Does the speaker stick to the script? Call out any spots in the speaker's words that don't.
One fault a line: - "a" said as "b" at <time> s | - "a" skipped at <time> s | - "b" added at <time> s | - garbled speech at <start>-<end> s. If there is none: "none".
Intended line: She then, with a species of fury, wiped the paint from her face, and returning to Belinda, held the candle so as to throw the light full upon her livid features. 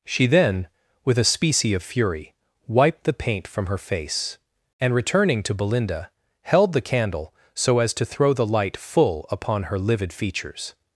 - "species" said as "specie" at 1.2 s